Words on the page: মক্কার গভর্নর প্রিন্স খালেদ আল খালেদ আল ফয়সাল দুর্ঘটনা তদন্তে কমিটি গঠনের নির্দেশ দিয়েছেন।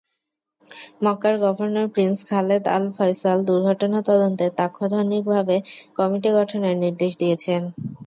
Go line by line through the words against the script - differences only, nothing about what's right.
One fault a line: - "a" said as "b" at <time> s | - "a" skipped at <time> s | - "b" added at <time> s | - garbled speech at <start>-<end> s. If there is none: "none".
- "খালেদ আল" skipped at 2.9 s
- "তাৎক্ষণিকভাবে" added at 4.6 s